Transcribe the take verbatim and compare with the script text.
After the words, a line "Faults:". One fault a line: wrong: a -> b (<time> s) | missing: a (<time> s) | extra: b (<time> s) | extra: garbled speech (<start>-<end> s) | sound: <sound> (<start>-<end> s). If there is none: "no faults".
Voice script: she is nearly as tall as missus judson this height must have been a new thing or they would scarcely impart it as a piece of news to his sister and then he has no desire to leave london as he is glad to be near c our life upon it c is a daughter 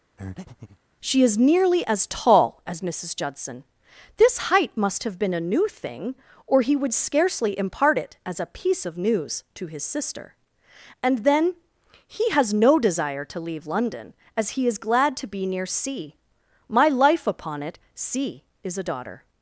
she is nearly as tall as missus judson this height must have been a new thing or he would scarcely impart it as a piece of news to his sister and then he has no desire to leave london as he is glad to be near c my life upon it c is a daughter
Faults:
sound: breath (0.2-0.8 s)
wrong: they -> he (6.6 s)
wrong: our -> my (16.7 s)